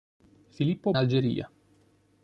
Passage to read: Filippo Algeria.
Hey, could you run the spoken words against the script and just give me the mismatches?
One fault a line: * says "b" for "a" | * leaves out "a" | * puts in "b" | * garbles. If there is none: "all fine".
all fine